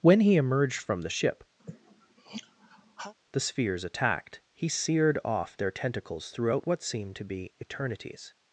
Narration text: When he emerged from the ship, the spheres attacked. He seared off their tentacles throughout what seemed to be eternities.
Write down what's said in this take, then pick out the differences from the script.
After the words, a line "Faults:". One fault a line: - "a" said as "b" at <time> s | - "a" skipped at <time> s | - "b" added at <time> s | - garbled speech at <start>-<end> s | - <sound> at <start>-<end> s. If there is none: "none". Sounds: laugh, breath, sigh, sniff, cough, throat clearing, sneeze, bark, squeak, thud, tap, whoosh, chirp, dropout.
When he emerged from the ship, the spheres attacked. He seared off their tentacles throughout what seemed to be eternities.
Faults:
- sigh at 1.6-3.1 s